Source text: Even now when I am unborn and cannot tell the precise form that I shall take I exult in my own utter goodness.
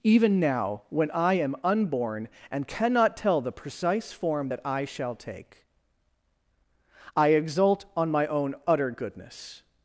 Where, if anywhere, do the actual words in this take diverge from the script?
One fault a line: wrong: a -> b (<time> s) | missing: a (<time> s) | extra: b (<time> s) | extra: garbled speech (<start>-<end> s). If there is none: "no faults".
wrong: in -> on (8.0 s)